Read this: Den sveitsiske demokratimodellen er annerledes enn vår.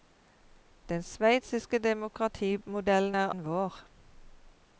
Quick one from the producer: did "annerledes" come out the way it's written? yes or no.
no